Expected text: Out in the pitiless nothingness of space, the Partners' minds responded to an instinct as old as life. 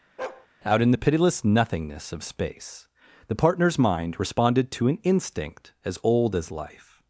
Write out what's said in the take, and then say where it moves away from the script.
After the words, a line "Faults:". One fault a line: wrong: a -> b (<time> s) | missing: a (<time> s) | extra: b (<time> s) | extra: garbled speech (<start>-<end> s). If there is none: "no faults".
Out in the pitiless nothingness of space, the Partners' mind responded to an instinct as old as life.
Faults:
wrong: minds -> mind (3.8 s)